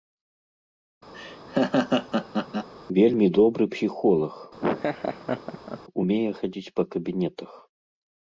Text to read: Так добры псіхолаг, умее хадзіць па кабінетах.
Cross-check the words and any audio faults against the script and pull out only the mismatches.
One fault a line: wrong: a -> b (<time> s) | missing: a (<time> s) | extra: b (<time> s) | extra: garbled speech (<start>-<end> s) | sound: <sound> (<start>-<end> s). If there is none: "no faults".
sound: laugh (1.1-2.7 s)
wrong: Так -> Вельмі (3.0 s)
sound: laugh (4.6-5.8 s)